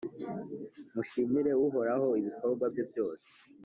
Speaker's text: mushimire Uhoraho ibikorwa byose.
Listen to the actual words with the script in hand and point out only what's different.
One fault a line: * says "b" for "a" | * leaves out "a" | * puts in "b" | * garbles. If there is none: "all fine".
* puts in "bye"